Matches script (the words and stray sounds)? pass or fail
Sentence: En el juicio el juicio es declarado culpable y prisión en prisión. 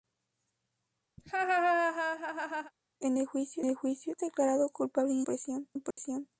fail